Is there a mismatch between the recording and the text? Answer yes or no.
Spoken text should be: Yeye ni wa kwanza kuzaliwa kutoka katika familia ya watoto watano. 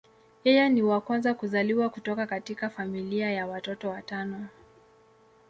no